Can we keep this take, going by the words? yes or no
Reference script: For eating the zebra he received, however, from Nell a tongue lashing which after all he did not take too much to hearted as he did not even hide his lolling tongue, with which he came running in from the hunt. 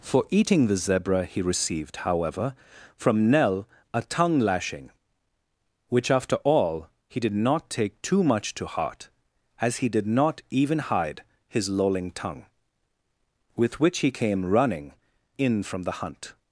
no